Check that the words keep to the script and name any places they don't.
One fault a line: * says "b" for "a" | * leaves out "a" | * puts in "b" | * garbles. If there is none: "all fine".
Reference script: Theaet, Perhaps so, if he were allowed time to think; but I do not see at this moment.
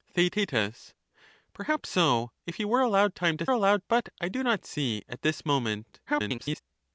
* says "allowed" for "think"
* garbles